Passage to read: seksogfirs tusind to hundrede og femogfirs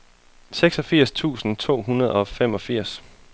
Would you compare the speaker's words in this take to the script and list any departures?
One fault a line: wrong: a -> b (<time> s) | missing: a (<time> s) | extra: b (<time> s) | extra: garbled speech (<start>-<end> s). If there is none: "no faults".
no faults